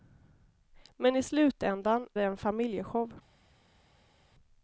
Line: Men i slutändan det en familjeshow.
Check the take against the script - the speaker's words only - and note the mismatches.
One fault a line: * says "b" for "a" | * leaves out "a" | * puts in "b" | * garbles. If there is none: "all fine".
all fine